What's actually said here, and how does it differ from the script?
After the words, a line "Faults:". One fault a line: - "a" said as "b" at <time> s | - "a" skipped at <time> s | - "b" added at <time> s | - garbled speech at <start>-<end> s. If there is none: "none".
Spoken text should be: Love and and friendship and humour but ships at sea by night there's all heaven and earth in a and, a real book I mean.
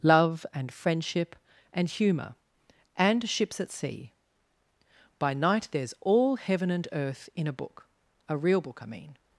Love and friendship and humour and ships at sea by night there's all heaven and earth in a book, a real book I mean.
Faults:
- "and" skipped at 0.7 s
- "but" said as "and" at 3.0 s
- "and" said as "book" at 7.5 s